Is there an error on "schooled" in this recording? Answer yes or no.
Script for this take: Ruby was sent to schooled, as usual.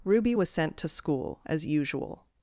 yes